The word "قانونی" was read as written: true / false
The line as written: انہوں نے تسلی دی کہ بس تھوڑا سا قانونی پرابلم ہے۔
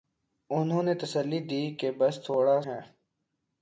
false